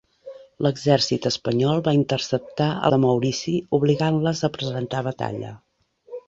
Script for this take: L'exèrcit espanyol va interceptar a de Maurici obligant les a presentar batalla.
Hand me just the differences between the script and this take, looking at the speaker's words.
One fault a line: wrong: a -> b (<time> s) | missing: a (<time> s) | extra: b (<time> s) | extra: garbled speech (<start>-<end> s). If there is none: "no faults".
no faults